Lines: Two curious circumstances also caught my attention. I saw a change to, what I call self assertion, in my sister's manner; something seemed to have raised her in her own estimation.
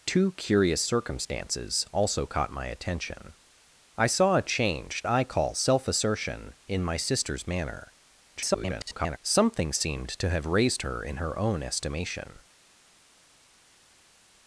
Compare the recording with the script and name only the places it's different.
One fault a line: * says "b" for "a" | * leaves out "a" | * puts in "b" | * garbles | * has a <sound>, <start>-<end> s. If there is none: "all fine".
* leaves out "to what"
* garbles